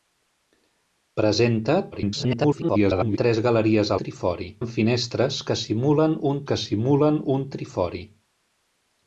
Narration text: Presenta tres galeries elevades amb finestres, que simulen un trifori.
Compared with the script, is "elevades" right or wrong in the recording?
wrong